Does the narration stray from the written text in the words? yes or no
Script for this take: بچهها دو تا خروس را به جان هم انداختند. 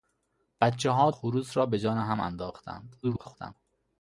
yes